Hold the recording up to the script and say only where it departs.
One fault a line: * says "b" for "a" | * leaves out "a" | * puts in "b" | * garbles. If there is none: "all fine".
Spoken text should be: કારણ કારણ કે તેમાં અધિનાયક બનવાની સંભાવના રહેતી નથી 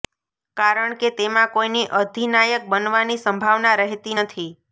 * leaves out "કારણ"
* puts in "કોઈની"